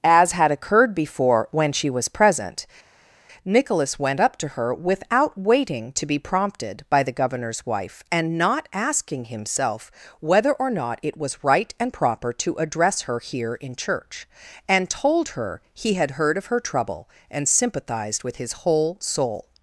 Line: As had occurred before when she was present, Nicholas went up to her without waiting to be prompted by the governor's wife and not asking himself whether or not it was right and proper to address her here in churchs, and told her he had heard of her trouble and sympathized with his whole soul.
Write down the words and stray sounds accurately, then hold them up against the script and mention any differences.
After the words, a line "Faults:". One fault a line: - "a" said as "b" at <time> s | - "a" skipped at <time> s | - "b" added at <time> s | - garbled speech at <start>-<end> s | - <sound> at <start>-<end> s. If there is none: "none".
As had occurred before when she was present, Nicholas went up to her without waiting to be prompted by the governor's wife and not asking himself whether or not it was right and proper to address her here in church, and told her he had heard of her trouble and sympathized with his whole soul.
Faults:
- "churchs" said as "church" at 13.7 s